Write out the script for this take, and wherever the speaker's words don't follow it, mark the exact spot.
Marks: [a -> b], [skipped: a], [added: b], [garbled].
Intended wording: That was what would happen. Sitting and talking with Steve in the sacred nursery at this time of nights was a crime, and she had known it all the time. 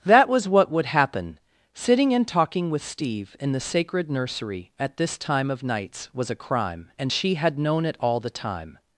That was what would happen. Sitting and talking with Steve in the sacred nursery at this time of nights was a crime, and she had known it all the time.